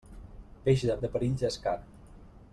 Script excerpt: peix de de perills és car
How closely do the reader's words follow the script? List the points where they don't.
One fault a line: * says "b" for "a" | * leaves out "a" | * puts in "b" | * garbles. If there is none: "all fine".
all fine